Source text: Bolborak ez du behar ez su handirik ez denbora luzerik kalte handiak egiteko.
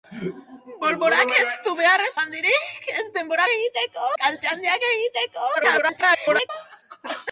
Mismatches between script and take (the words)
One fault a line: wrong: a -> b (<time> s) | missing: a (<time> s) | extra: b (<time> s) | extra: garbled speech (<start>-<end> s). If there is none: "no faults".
missing: su (2.1 s)
wrong: luzerik -> egiteko (3.5 s)
extra: garbled speech (5.5-6.5 s)